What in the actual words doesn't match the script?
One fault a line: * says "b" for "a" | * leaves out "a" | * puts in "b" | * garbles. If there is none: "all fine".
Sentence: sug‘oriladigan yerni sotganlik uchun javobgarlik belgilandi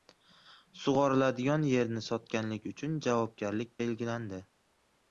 all fine